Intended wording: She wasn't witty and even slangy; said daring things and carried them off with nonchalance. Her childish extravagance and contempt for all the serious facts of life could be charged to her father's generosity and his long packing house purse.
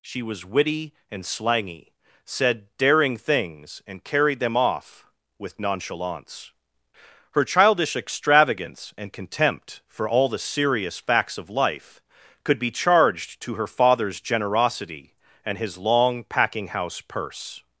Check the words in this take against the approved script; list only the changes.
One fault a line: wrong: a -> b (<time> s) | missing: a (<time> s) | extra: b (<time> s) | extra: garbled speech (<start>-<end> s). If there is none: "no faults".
wrong: wasn't -> was (0.2 s)
missing: even (1.2 s)